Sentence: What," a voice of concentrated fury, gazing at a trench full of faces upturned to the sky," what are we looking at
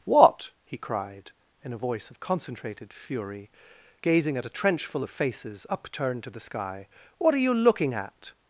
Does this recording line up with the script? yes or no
no